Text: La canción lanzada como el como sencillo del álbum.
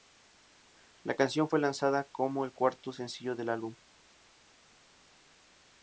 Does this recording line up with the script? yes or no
no